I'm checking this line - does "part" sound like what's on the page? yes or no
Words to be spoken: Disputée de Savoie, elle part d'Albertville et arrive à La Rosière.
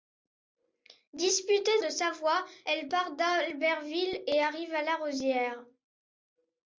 yes